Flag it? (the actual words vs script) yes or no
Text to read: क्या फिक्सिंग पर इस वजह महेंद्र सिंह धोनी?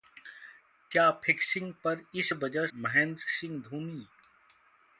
no